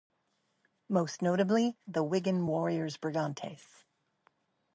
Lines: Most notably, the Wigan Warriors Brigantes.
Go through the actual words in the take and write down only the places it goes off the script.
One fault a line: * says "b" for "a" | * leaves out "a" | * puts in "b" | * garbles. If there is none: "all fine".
all fine